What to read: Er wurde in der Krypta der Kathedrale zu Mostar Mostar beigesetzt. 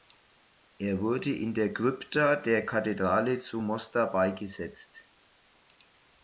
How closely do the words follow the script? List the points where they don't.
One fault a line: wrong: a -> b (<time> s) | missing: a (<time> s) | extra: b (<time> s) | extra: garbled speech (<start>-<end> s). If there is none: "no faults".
missing: Mostar (4.1 s)